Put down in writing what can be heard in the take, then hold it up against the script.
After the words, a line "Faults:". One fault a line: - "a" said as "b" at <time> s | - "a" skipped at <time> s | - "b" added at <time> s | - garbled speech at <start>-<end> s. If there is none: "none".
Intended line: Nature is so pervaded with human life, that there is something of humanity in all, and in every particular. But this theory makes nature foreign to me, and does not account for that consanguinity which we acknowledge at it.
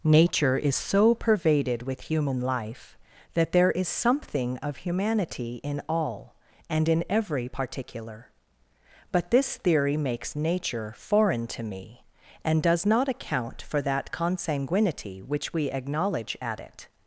Nature is so pervaded with human life, that there is something of humanity in all, and in every particular. But this theory makes nature foreign to me, and does not account for that consanguinity which we acknowledge at it.
Faults:
none